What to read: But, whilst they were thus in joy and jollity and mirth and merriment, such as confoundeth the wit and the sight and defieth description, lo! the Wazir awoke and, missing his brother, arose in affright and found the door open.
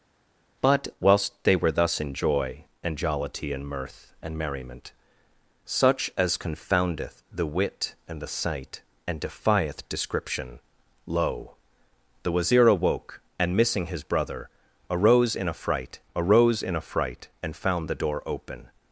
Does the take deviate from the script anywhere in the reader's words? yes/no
yes